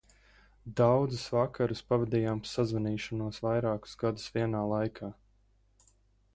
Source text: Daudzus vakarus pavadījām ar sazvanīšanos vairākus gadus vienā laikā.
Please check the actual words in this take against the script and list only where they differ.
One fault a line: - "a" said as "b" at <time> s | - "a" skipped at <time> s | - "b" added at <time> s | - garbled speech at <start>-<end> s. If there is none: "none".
none